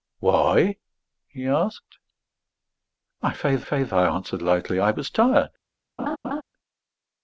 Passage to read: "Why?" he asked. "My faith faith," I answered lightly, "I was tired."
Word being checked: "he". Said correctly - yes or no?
yes